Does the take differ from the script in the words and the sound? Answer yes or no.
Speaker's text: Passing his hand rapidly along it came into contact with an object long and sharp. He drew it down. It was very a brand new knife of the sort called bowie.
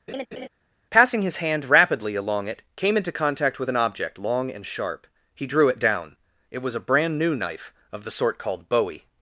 yes